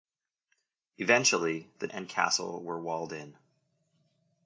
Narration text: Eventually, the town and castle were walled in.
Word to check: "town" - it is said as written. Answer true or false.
false